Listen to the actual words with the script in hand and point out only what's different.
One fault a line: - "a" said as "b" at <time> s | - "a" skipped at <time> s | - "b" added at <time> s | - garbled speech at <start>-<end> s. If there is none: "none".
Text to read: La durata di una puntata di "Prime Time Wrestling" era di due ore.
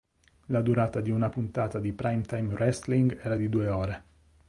none